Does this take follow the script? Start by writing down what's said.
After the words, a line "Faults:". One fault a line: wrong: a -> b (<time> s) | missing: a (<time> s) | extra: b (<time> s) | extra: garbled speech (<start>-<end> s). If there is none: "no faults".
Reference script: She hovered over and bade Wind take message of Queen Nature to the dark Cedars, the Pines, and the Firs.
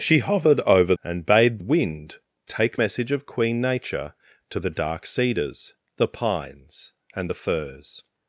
She hovered over and bade Wind take message of Queen Nature to the dark Cedars, the Pines, and the Firs.
Faults:
no faults